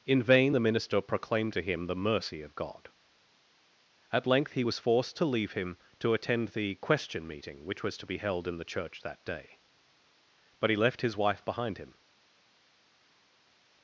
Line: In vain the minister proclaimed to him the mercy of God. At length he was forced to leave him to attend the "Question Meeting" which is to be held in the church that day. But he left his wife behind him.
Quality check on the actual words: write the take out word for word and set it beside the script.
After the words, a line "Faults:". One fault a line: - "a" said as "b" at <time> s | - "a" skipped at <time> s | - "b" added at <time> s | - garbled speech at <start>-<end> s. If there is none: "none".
In vain the minister proclaimed to him the mercy of God. At length he was forced to leave him to attend the "Question Meeting" which was to be held in the church that day. But he left his wife behind him.
Faults:
- "is" said as "was" at 7.8 s